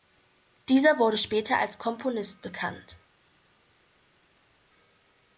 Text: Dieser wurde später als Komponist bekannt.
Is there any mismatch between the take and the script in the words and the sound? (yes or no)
no